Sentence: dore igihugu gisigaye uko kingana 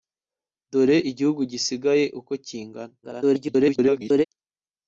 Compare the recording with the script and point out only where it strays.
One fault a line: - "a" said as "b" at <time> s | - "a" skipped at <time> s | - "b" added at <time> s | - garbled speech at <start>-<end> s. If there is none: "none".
- garbled speech at 3.0-4.2 s